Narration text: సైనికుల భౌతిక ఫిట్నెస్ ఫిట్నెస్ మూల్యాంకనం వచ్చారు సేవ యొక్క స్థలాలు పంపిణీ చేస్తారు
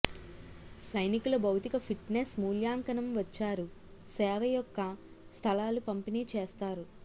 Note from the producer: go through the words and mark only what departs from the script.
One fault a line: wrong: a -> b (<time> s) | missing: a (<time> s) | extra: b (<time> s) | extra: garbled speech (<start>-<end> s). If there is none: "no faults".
missing: ఫిట్నెస్ (2.3 s)